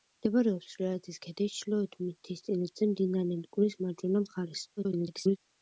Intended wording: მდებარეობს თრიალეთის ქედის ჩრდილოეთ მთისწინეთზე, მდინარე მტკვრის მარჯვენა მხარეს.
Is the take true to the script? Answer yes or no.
no